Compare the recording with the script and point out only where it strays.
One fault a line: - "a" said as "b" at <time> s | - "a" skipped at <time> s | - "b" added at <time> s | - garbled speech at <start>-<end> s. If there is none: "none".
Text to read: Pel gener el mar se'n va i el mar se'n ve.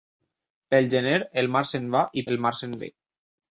none